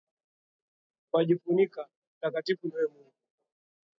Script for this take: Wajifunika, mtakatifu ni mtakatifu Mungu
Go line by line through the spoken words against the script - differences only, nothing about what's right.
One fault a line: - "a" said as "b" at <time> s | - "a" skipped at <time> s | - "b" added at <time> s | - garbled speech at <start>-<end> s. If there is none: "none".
- "mtakatifu" said as "wewe" at 2.7 s